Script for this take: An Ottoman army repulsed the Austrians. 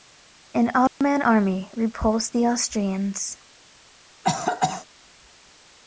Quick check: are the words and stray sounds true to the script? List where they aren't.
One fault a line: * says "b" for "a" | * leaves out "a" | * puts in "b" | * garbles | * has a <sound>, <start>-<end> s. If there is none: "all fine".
* has a dropout, 0.9-1.0 s
* has a cough, 4.2-4.9 s